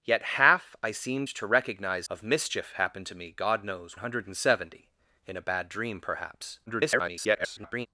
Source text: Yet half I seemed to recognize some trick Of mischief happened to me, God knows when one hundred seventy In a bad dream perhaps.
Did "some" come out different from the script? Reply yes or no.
yes